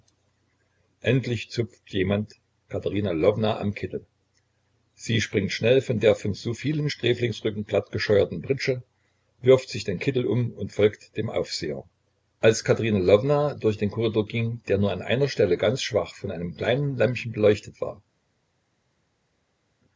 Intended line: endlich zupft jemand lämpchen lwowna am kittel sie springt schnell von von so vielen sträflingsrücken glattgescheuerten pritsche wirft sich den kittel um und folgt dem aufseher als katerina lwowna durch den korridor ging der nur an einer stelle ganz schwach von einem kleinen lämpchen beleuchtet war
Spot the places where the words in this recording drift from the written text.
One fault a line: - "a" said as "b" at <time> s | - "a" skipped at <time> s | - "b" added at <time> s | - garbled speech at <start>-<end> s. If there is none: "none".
- "lämpchen" said as "katerina" at 2.7 s
- "der" added at 6.0 s